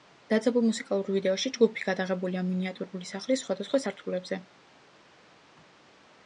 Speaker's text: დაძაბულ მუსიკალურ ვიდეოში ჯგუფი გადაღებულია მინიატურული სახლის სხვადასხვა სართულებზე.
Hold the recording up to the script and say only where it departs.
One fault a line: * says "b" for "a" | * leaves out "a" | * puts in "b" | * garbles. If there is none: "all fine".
all fine